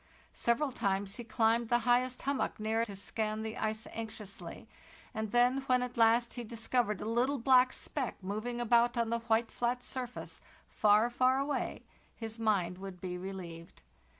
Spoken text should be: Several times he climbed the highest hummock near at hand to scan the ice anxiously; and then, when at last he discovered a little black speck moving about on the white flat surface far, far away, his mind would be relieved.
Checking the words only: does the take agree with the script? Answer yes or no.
no